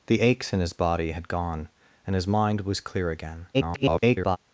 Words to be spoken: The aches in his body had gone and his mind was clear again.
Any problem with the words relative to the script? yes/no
yes